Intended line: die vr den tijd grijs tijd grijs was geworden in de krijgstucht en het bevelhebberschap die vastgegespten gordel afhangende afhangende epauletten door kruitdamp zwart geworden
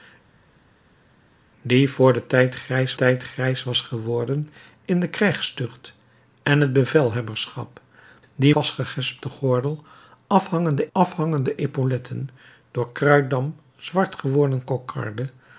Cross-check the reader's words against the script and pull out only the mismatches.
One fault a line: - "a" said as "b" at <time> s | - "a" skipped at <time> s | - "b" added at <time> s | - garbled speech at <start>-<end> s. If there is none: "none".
none